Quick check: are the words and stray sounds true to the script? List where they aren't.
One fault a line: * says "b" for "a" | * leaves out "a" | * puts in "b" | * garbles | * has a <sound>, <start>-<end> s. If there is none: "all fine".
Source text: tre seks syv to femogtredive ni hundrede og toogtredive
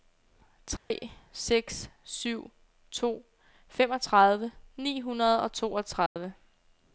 * has a dropout, 0.8-0.9 s
* has a dropout, 6.1-6.2 s